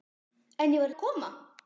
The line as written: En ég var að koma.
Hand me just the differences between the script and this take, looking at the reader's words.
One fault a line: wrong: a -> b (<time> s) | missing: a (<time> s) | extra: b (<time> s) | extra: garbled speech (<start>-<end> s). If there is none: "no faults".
no faults